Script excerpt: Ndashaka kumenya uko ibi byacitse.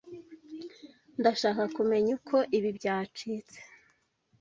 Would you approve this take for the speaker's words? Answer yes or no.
yes